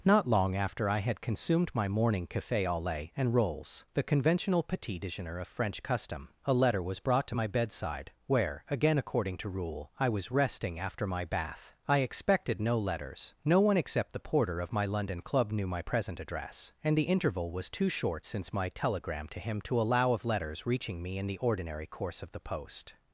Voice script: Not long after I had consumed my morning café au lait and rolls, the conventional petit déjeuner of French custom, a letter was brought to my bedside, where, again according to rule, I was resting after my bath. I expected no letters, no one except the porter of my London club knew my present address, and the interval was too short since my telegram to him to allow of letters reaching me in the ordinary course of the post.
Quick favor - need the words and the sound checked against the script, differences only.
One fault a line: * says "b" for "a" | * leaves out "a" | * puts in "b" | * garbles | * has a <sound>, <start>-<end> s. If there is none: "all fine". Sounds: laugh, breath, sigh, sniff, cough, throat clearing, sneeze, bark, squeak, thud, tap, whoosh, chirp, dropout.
all fine